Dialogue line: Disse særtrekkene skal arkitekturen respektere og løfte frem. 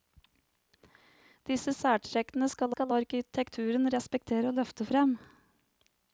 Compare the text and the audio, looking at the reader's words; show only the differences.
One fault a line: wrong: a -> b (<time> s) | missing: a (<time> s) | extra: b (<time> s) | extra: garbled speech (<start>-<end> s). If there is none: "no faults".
extra: skal (2.7 s)